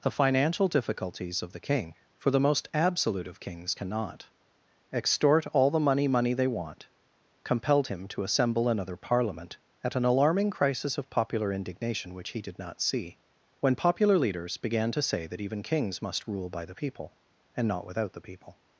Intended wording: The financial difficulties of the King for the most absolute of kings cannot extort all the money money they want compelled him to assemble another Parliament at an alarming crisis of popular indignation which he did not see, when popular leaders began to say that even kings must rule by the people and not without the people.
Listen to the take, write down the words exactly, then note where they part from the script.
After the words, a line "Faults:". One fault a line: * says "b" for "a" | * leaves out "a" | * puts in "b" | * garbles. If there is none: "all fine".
The financial difficulties of the King for the most absolute of kings cannot extort all the money money they want compelled him to assemble another Parliament at an alarming crisis of popular indignation which he did not see, when popular leaders began to say that even kings must rule by the people and not without the people.
Faults:
all fine